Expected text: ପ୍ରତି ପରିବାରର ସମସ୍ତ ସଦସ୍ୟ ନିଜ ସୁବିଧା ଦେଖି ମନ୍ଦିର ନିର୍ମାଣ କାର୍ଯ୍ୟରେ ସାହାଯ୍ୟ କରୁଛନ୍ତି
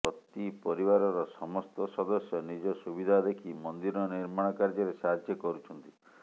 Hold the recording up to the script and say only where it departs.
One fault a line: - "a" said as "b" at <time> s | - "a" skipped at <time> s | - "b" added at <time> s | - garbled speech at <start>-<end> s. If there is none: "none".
none